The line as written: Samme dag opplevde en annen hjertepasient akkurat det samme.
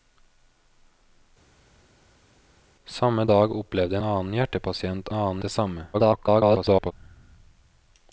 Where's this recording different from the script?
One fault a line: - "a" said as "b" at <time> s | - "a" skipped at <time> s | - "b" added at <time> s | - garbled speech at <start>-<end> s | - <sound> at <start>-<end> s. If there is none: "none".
- "en" skipped at 4.0 s
- "akkurat" said as "annen" at 5.1 s
- garbled speech at 5.9-6.9 s